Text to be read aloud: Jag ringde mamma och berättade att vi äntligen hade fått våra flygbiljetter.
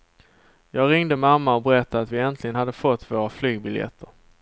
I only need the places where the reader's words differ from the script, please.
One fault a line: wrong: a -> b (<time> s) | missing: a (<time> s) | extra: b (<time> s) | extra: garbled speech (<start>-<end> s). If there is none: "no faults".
no faults